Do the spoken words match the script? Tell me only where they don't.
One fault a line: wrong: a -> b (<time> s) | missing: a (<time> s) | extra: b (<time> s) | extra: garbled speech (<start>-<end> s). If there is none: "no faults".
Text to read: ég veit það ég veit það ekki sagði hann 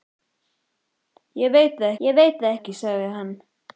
no faults